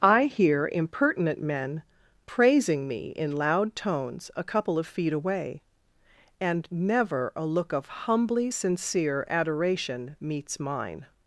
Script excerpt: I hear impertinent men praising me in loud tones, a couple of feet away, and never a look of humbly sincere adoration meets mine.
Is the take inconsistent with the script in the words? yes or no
no